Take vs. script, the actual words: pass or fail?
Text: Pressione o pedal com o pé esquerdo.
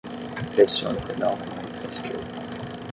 fail